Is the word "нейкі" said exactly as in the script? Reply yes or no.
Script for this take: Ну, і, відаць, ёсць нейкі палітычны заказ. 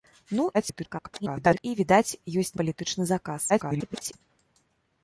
no